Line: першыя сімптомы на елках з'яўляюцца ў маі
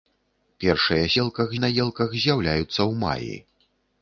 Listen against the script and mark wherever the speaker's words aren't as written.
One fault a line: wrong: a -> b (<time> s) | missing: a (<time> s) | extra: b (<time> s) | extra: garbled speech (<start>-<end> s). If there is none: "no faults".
wrong: сімптомы -> елках (1.2 s)